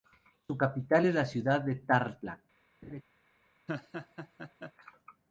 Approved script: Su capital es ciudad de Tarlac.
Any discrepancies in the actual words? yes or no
yes